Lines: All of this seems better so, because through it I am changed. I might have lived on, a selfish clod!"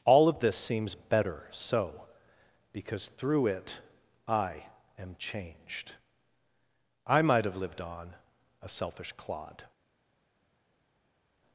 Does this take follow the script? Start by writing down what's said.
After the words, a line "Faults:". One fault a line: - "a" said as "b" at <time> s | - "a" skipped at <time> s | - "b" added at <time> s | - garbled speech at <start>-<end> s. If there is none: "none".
All of this seems better so, because through it I am changed. I might have lived on, a selfish clod!"
Faults:
none